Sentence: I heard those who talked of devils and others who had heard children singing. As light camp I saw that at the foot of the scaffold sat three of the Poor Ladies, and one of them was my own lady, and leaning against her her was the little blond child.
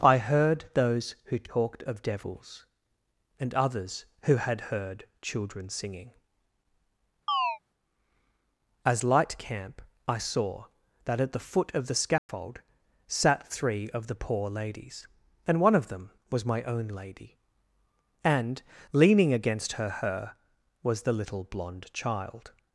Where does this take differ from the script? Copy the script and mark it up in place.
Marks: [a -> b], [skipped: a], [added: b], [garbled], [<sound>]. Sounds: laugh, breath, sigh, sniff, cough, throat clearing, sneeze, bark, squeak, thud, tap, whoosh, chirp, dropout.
I heard those who talked of devils and others who had heard children singing. [chirp] As light camp I saw that at the foot of the scaffold [dropout] sat three of the Poor Ladies, and one of them was my own lady, and leaning against her her was the little blond child.